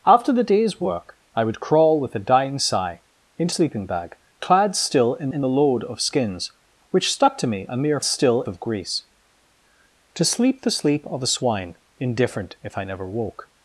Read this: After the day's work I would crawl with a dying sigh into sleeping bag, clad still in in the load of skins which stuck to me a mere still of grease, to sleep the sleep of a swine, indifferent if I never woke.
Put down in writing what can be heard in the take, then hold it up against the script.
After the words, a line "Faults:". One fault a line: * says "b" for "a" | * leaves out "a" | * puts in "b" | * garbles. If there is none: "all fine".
After the day's work I would crawl with a dying sigh into sleeping bag, clad still in in the load of skins which stuck to me a mere still of grease, to sleep the sleep of a swine, indifferent if I never woke.
Faults:
all fine